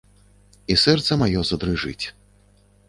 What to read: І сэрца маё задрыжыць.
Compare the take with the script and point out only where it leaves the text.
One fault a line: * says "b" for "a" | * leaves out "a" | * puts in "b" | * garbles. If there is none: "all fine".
all fine